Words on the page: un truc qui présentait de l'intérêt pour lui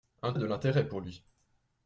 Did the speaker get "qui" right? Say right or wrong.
wrong